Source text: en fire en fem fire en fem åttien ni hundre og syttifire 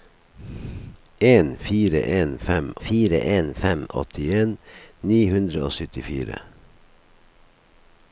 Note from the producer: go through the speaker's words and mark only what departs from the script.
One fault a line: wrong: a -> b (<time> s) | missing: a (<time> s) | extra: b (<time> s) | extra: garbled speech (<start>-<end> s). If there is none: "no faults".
no faults